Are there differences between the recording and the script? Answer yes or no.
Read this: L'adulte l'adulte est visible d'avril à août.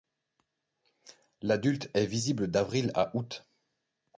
yes